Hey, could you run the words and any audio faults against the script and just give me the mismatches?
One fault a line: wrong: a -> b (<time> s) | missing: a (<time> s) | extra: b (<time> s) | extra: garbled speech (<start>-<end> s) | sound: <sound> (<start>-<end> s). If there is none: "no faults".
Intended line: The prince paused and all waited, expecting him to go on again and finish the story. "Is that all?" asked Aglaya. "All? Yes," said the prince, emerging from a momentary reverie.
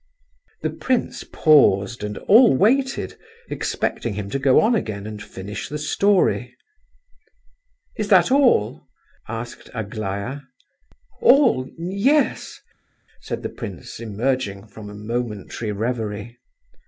no faults